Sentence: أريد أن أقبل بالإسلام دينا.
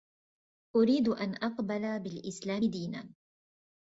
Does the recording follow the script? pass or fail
pass